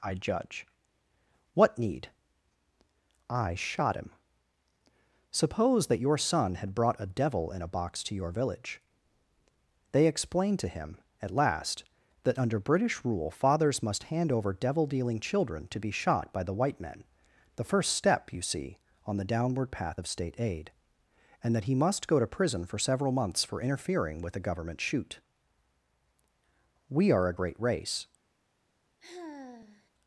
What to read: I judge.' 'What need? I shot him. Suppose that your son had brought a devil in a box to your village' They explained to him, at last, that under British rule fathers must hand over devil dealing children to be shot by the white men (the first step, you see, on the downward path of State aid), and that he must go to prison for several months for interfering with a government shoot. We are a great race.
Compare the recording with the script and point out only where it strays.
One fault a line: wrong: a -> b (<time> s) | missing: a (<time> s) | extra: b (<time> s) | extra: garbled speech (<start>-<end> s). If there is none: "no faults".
no faults